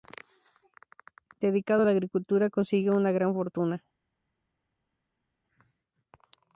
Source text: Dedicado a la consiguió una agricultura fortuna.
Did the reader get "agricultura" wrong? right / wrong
wrong